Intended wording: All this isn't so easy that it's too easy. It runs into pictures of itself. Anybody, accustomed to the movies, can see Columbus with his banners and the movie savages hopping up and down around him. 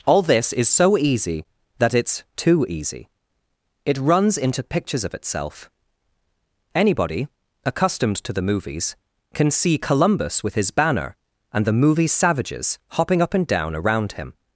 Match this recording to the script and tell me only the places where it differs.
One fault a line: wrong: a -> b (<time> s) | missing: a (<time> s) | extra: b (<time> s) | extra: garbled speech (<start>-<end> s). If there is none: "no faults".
wrong: isn't -> is (0.5 s)
wrong: banners -> banner (10.7 s)